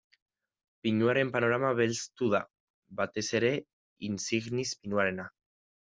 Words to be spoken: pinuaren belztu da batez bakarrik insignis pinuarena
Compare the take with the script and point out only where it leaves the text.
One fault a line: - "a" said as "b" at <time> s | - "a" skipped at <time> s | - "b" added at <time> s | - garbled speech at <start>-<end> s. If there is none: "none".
- "panorama" added at 1.4 s
- "bakarrik" said as "ere" at 3.4 s